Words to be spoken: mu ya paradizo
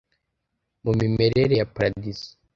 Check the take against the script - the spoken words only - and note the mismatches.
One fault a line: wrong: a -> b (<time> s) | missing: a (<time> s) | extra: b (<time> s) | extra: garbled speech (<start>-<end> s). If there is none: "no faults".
extra: mimerere (1.0 s)